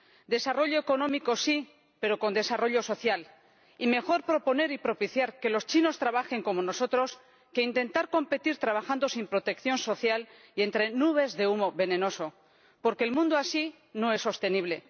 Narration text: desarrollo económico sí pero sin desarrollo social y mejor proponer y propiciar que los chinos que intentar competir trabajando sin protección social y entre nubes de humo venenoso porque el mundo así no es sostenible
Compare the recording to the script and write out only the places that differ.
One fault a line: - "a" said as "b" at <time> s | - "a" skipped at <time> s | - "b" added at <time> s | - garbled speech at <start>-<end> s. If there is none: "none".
- "sin" said as "con" at 2.2 s
- "trabajen como nosotros" added at 6.0 s